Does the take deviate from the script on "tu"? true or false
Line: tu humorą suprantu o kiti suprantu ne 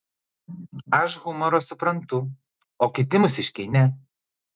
true